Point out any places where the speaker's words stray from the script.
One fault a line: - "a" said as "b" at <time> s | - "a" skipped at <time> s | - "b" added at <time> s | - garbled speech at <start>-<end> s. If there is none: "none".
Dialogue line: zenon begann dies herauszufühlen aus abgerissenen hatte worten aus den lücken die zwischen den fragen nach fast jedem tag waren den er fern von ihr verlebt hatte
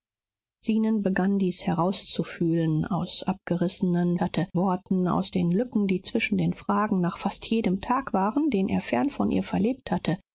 none